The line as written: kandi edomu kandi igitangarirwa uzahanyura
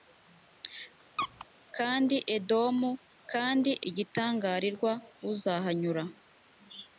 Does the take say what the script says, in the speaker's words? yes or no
yes